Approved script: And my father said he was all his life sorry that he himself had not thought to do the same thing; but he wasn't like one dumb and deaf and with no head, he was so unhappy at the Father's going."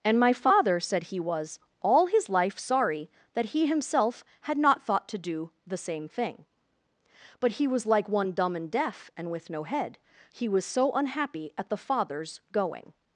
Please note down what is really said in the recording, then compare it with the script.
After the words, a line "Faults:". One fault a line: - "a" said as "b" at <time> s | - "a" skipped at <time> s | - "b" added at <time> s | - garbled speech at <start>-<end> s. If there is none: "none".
And my father said he was all his life sorry that he himself had not thought to do the same thing; but he was like one dumb and deaf and with no head, he was so unhappy at the Father's going."
Faults:
- "wasn't" said as "was" at 7.7 s